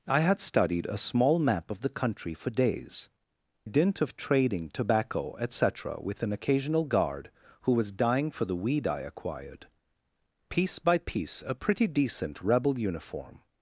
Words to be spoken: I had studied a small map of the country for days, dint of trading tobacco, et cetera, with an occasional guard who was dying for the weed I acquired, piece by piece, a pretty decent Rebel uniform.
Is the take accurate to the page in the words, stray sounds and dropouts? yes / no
yes